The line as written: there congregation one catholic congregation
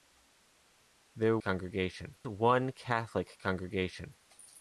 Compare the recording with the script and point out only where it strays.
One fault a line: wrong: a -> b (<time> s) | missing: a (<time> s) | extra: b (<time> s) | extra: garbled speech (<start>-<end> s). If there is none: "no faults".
no faults